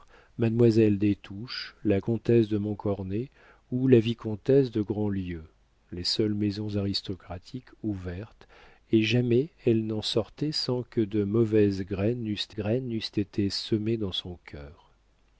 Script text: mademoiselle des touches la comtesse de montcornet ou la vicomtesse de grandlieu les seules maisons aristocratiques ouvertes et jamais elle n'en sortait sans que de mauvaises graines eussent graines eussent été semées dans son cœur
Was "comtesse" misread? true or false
false